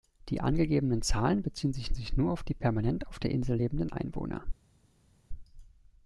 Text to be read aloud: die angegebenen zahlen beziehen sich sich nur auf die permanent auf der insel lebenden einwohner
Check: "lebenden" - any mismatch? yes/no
no